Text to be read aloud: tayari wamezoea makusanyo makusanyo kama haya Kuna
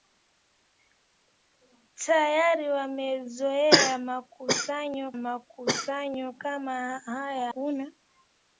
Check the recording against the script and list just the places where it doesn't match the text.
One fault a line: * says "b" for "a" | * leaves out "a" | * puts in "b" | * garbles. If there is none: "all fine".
all fine